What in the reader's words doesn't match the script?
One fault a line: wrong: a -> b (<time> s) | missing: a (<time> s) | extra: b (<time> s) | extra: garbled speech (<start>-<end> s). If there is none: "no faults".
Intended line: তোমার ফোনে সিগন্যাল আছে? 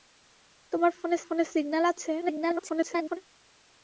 extra: ফোনে (1.3 s)
extra: garbled speech (2.2-3.2 s)